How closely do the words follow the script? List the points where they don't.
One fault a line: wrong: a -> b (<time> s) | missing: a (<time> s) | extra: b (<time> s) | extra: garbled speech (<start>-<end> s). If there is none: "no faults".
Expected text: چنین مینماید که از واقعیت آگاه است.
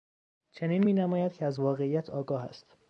no faults